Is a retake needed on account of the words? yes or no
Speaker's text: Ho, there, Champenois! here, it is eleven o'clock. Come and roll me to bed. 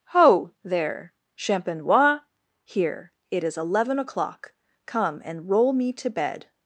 no